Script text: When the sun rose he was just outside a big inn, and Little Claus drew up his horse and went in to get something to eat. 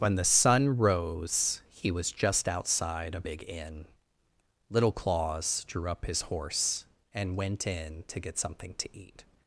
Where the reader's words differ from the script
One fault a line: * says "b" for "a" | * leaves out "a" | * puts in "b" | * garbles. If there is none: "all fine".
* leaves out "and"